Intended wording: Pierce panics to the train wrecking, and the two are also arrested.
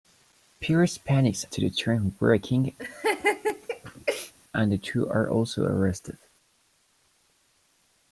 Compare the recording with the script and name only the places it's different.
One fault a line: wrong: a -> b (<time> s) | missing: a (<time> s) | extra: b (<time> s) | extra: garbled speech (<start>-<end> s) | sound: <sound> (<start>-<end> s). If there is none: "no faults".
sound: laugh (2.8-4.3 s)